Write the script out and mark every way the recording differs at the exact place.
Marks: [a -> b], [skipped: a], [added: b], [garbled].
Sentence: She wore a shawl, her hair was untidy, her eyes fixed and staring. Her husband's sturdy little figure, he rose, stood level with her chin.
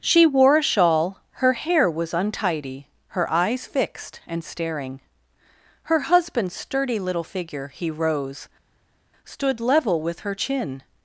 She wore a shawl, her hair was untidy, her eyes fixed and staring. Her husband's sturdy little figure, he rose, stood level with her chin.